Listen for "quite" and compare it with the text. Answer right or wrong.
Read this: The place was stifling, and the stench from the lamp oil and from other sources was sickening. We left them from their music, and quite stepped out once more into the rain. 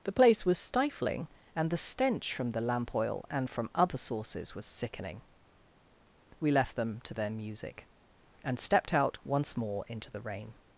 wrong